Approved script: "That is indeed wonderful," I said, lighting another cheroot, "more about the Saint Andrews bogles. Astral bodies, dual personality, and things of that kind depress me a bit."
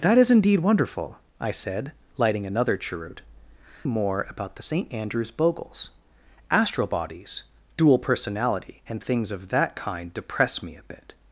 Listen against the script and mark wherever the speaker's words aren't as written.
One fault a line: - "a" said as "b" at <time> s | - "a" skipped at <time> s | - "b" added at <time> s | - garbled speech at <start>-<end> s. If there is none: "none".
none